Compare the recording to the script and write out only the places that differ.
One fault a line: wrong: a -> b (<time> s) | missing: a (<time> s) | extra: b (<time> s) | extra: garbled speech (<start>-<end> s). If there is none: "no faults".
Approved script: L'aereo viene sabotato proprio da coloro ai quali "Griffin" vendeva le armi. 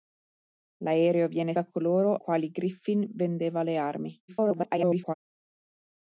missing: sabotato proprio (1.5 s)
missing: ai (2.2 s)
extra: garbled speech (4.3-5.1 s)